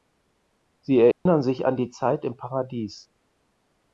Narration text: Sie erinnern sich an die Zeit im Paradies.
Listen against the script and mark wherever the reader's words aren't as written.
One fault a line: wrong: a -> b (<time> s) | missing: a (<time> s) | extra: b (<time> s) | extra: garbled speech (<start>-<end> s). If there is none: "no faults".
no faults